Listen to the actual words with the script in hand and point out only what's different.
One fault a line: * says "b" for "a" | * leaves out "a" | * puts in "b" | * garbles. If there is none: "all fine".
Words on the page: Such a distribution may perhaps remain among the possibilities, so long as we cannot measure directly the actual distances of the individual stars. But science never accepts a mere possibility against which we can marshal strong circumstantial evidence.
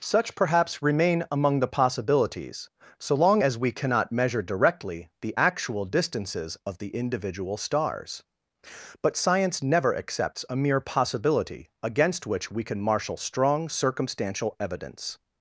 * leaves out "a distribution may"